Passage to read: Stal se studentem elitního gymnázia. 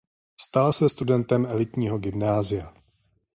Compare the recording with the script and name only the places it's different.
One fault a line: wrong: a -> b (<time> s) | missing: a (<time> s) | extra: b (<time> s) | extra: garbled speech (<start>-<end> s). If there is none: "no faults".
no faults